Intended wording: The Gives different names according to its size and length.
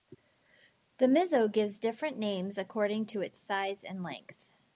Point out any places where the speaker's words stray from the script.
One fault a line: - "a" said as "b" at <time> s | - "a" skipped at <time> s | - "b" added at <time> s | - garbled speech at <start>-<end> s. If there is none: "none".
- "Mizo" added at 1.1 s